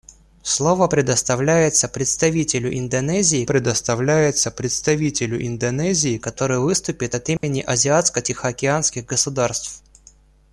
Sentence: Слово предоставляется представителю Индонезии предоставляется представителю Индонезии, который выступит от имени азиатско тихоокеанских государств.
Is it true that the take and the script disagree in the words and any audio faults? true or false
true